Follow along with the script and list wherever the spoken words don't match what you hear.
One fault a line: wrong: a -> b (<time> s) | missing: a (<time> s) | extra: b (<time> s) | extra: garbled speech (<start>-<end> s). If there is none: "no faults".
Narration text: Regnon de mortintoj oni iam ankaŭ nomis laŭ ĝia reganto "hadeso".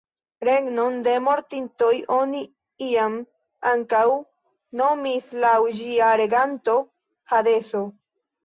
no faults